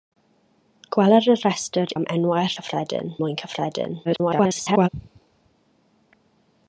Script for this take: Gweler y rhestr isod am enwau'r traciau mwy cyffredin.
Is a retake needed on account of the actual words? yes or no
yes